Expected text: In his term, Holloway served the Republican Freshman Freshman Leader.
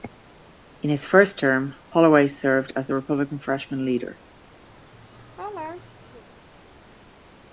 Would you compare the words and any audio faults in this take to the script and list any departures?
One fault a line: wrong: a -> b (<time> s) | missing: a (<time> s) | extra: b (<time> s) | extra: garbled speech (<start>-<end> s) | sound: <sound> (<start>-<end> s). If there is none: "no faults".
extra: first (1.1 s)
extra: as (2.8 s)
missing: Freshman (3.8 s)
sound: laugh (4.7-6.2 s)